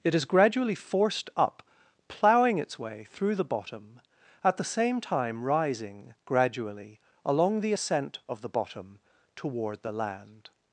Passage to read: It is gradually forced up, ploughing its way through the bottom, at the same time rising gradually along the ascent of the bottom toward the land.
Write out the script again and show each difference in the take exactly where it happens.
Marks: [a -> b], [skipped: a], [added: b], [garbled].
It is gradually forced up, ploughing its way through the bottom, at the same time rising gradually along the ascent of the bottom toward the land.